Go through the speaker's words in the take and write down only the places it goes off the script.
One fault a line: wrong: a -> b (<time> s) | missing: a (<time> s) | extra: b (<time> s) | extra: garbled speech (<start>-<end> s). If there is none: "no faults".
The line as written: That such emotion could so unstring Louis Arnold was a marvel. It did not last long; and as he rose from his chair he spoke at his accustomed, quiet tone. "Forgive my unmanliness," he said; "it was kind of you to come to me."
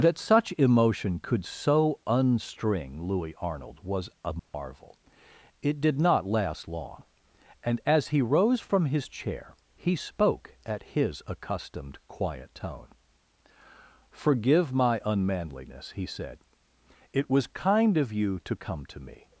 no faults